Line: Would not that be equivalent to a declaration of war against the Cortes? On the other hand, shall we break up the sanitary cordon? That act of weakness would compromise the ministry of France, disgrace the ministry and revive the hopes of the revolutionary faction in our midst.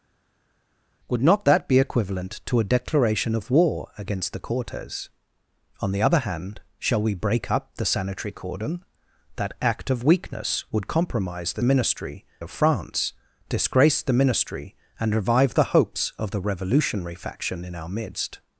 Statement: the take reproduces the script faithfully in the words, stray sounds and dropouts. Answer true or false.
true